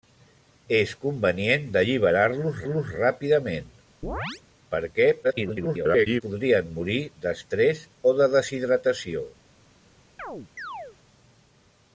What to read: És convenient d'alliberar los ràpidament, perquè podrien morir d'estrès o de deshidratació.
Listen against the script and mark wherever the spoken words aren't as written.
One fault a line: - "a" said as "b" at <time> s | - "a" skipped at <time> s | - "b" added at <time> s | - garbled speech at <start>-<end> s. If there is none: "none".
- "los" added at 2.7 s
- garbled speech at 5.2-6.2 s